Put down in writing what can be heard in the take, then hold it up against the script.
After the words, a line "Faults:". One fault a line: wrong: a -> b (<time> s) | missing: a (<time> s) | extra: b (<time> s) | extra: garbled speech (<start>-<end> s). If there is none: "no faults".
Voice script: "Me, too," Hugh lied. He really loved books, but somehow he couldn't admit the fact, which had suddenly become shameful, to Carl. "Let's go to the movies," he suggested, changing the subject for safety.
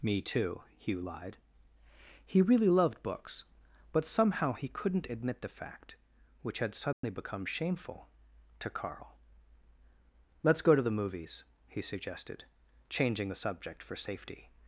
"Me, too," Hugh lied. He really loved books, but somehow he couldn't admit the fact, which had suddenly become shameful, to Carl. "Let's go to the movies," he suggested, changing the subject for safety.
Faults:
no faults